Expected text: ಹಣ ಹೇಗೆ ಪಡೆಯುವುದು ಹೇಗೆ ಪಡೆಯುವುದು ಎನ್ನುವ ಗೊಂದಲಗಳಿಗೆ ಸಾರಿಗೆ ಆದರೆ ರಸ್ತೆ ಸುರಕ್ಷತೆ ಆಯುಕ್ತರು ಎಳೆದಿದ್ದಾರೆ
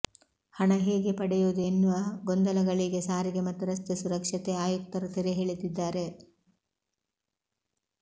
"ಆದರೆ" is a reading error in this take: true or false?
true